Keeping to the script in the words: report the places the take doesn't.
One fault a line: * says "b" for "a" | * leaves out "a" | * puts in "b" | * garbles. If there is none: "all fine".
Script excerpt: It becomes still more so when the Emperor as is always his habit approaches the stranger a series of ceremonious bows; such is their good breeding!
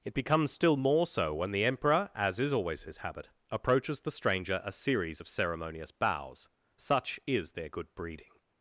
all fine